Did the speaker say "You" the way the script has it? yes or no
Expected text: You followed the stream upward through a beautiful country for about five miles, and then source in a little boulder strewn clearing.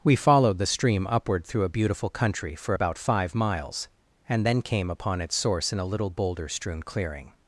no